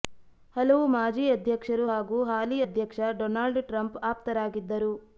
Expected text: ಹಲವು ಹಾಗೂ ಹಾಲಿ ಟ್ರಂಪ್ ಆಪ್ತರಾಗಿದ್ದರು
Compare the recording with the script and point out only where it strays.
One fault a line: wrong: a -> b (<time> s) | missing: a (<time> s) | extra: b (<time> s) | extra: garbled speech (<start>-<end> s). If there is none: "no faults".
extra: ಮಾಜಿ ಅಧ್ಯಕ್ಷರು (0.9 s)
extra: ಅಧ್ಯಕ್ಷ ಡೊನಾಲ್ಡ್ (2.6 s)